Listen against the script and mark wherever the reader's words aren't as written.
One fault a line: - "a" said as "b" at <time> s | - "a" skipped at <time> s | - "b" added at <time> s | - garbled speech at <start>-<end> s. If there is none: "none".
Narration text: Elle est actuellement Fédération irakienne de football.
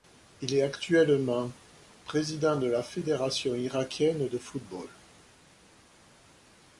- "Elle" said as "Il" at 0.4 s
- "président de la" added at 2.0 s